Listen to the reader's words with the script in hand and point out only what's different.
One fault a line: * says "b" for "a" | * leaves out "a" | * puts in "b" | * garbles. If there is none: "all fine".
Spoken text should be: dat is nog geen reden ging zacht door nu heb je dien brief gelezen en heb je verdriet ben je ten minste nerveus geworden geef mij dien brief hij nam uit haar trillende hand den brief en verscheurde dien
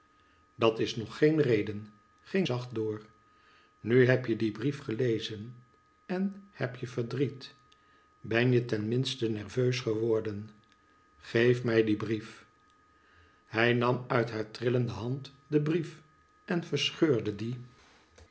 all fine